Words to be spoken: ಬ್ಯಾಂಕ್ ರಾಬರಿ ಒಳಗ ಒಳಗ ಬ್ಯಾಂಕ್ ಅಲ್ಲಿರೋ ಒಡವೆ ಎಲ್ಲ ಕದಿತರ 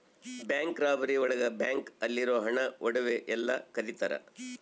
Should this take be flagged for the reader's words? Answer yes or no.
yes